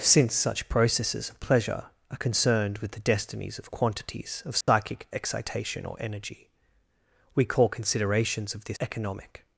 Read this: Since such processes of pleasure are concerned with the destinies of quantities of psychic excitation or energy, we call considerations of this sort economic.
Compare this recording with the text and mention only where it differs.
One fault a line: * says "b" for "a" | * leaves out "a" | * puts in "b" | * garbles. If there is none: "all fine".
* leaves out "sort"